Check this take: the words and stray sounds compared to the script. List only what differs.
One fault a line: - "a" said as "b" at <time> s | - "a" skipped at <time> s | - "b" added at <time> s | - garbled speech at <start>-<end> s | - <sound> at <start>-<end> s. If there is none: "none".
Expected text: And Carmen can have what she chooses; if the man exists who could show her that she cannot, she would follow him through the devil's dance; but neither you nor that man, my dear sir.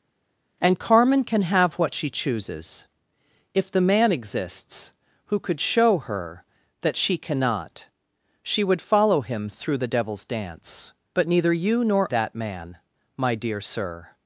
none